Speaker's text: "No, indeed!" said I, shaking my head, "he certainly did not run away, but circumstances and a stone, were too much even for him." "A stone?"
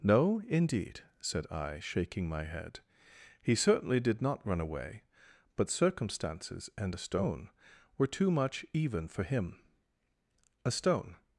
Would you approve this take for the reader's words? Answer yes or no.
yes